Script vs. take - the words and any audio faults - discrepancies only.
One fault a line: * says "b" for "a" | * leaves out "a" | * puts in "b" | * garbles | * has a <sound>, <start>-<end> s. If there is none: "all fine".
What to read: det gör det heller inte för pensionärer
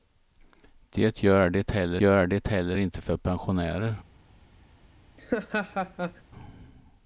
* puts in "gör det heller"
* has a laugh, 5.2-6.2 s